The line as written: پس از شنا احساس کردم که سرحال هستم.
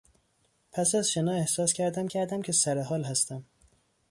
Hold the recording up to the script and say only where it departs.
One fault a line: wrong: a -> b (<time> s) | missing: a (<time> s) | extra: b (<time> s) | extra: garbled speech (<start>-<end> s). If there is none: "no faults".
extra: کردم (2.1 s)